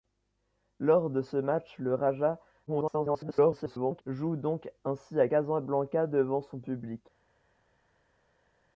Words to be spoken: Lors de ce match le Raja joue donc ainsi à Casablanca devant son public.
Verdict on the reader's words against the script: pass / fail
fail